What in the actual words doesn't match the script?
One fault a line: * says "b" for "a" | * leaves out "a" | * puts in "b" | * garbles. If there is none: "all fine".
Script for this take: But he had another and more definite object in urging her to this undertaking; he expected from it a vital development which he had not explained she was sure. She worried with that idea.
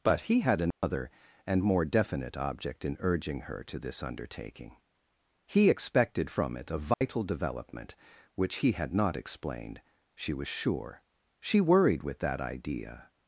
all fine